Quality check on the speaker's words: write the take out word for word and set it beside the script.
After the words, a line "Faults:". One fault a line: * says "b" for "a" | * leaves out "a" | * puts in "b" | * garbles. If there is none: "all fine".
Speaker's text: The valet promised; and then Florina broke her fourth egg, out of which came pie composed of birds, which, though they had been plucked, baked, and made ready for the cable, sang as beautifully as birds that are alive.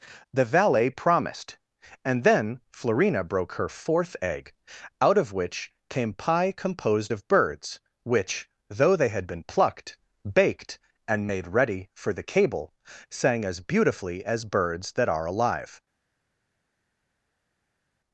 The valet promised; and then Florina broke her fourth egg, out of which came pie composed of birds, which, though they had been plucked, baked, and made ready for the cable, sang as beautifully as birds that are alive.
Faults:
all fine